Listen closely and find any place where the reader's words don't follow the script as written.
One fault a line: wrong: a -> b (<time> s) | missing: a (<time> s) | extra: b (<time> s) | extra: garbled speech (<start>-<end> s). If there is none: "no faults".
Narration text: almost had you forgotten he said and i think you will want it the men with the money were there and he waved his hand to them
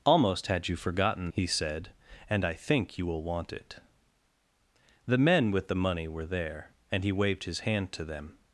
no faults